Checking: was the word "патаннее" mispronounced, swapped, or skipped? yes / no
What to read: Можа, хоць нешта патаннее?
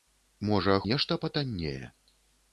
no